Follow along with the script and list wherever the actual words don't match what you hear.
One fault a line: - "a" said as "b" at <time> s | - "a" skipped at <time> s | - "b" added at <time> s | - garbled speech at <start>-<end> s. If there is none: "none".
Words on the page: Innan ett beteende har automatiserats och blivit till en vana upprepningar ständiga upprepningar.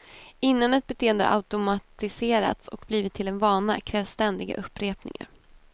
- "upprepningar" said as "krävs" at 3.8 s